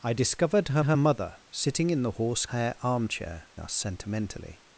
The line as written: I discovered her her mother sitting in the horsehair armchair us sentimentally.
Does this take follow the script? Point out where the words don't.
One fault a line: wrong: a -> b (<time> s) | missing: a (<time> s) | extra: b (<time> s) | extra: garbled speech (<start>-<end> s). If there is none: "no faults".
no faults